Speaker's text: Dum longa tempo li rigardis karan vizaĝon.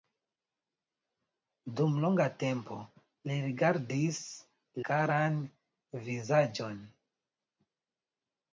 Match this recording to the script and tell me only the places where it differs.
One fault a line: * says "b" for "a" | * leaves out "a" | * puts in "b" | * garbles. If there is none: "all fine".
all fine